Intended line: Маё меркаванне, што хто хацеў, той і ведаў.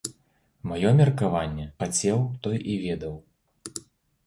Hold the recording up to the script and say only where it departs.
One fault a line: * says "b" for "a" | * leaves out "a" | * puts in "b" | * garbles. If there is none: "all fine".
* leaves out "што хто"